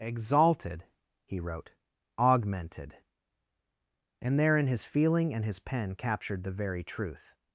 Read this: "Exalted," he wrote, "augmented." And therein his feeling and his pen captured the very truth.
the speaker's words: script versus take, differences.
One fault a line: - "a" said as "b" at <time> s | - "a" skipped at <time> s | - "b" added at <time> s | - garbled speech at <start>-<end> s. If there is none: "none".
none